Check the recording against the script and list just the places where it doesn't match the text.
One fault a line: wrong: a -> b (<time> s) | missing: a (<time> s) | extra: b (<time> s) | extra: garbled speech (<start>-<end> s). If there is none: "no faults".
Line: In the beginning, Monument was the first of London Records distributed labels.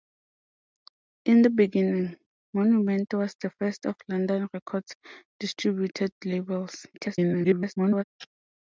extra: garbled speech (6.9-8.0 s)